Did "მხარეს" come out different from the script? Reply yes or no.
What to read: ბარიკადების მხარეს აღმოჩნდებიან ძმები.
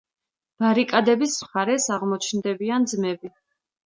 no